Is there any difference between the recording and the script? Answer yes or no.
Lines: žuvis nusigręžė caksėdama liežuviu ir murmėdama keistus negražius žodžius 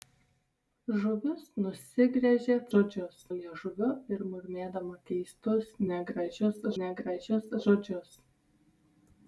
yes